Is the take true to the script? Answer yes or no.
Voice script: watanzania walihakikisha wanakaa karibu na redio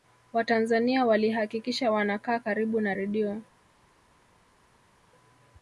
yes